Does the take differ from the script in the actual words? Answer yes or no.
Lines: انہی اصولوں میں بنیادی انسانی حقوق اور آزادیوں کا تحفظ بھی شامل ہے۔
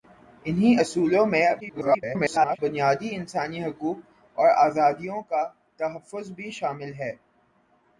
yes